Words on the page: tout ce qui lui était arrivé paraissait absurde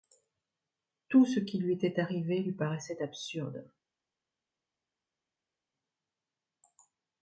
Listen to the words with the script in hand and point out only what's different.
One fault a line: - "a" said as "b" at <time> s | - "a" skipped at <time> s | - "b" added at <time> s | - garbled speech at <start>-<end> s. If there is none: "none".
- "lui" added at 2.4 s